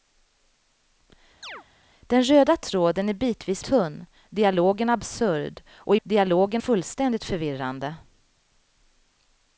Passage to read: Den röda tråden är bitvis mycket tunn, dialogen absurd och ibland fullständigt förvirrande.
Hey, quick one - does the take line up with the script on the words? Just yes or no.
no